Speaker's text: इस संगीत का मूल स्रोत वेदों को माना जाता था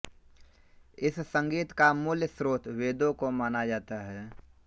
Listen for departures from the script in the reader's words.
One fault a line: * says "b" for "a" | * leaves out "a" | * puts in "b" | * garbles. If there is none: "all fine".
* says "है" for "था"